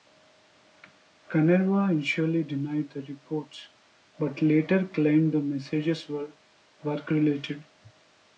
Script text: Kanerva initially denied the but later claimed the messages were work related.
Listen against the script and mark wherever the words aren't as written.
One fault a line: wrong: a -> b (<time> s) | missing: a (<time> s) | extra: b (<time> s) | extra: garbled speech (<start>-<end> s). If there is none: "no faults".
extra: reports (3.0 s)